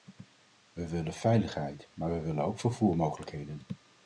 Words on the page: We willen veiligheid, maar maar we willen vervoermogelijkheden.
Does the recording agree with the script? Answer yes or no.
no